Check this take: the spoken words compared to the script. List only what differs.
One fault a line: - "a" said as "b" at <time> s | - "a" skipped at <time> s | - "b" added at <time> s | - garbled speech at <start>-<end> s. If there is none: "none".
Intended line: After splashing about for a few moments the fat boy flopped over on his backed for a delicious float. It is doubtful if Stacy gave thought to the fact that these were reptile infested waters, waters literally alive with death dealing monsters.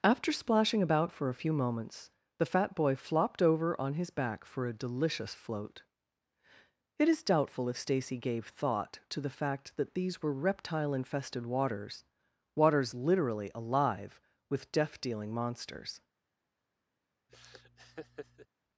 - "backed" said as "back" at 4.1 s